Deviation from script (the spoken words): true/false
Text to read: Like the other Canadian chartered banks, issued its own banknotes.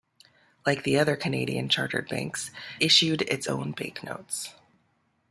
false